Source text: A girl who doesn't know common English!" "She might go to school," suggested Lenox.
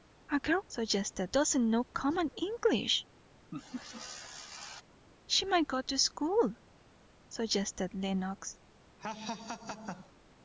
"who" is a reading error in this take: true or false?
true